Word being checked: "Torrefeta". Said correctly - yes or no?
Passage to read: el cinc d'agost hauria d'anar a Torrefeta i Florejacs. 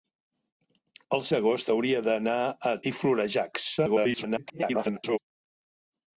no